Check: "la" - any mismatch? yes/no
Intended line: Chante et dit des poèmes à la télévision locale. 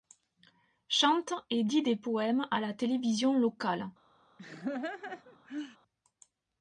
no